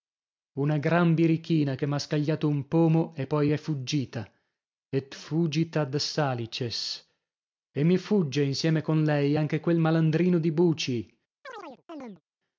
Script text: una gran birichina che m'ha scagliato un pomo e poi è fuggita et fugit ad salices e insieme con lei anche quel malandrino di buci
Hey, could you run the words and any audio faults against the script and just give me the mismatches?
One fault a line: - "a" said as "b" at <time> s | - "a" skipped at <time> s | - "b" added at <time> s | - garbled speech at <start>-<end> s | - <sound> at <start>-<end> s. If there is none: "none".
- "mi fugge" added at 7.8 s
- chirp at 11.4-12.2 s